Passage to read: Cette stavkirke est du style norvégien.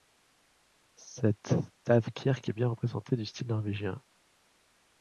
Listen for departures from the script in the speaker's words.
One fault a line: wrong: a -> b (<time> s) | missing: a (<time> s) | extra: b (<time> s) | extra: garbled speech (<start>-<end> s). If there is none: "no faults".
extra: bien représentative (2.5 s)